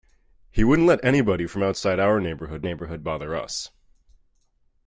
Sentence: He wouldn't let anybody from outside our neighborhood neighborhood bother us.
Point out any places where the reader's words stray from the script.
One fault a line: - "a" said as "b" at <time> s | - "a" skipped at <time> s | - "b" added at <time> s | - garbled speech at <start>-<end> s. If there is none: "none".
none